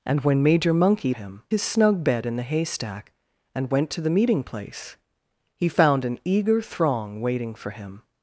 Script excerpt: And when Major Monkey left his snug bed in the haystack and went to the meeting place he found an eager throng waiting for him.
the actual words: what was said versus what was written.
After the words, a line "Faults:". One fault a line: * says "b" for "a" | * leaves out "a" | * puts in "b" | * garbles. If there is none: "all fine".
And when Major Monkey him his snug bed in the haystack and went to the meeting place he found an eager throng waiting for him.
Faults:
* says "him" for "left"